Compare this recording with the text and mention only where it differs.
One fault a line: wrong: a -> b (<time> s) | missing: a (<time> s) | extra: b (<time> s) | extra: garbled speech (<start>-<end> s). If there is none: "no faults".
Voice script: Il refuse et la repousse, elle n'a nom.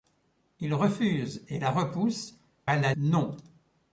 no faults